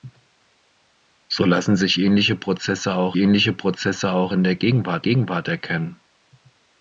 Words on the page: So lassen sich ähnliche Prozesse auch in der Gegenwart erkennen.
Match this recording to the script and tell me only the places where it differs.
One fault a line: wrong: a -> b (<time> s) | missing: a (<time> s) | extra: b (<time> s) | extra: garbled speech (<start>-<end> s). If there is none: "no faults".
extra: ähnliche Prozesse auch (3.2 s)
extra: Gegenwart (5.0 s)